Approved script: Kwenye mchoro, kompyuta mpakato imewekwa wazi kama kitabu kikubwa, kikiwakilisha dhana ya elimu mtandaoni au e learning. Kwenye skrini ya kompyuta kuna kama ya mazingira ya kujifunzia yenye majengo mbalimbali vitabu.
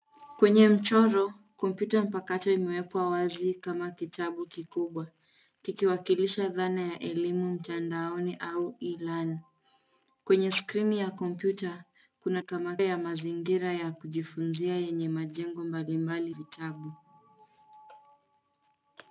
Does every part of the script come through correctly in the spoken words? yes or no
yes